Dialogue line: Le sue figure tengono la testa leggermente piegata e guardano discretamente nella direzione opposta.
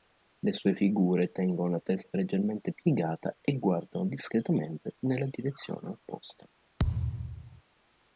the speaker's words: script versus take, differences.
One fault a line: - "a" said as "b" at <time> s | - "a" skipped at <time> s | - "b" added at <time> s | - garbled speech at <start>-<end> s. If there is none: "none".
none